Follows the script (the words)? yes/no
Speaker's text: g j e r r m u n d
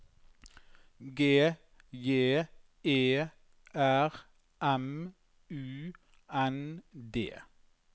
no